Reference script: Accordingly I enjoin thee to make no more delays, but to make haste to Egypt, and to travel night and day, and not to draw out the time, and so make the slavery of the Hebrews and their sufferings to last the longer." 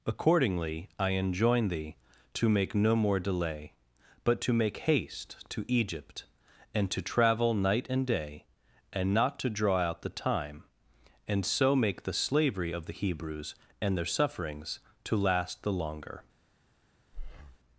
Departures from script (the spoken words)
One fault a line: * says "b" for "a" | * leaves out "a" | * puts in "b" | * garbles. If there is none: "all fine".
* says "delay" for "delays"